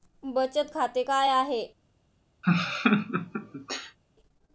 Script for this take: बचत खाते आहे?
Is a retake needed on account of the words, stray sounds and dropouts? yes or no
yes